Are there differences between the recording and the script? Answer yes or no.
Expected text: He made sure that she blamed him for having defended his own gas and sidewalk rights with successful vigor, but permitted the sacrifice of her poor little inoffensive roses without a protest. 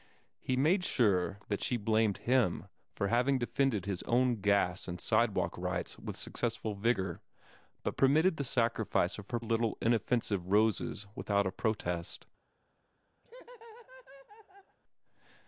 yes